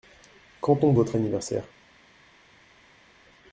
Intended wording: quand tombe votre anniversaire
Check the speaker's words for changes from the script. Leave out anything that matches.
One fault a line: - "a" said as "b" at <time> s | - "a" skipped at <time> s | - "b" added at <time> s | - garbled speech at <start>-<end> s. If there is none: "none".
none